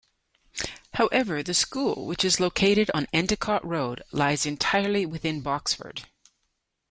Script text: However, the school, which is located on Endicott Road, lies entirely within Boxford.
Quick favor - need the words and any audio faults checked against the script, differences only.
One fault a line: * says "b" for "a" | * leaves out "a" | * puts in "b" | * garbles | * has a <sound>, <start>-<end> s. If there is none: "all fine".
all fine